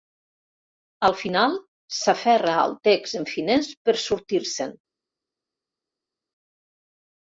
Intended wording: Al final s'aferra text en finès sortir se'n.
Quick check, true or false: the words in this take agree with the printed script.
false